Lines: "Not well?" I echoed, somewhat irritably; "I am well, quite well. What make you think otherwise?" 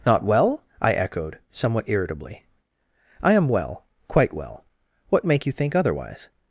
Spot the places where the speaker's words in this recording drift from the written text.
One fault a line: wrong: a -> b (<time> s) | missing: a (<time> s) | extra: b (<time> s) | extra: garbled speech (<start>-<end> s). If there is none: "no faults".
no faults